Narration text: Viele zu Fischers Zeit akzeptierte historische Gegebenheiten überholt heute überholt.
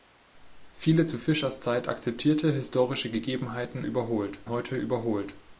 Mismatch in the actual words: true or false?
false